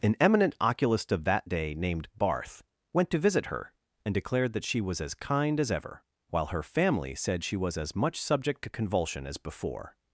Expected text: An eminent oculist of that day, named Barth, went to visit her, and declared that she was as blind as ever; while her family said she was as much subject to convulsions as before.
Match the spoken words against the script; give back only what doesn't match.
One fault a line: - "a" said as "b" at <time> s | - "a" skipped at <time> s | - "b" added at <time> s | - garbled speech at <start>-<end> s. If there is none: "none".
- "blind" said as "kind" at 5.1 s
- "convulsions" said as "convulsion" at 8.7 s